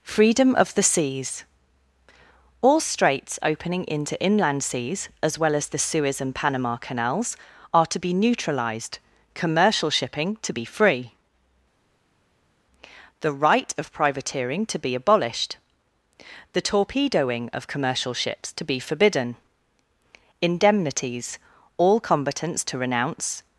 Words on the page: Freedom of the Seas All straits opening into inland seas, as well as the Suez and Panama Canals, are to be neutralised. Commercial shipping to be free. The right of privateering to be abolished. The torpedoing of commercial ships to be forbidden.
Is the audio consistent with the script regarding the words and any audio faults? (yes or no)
no